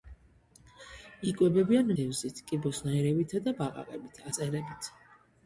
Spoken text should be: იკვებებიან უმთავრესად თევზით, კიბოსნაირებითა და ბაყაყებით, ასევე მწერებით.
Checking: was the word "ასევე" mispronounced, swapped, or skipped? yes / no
yes